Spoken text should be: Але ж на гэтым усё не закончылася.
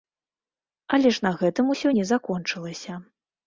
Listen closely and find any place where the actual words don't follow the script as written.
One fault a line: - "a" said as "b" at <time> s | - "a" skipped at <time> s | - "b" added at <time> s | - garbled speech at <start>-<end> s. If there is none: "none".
none